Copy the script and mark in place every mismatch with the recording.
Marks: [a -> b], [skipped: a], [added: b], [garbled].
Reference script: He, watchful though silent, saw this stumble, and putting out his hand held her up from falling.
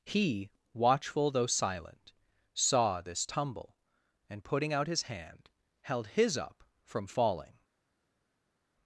He, watchful though silent, saw this [stumble, -> tumble] and putting out his hand held [her -> his] up from falling.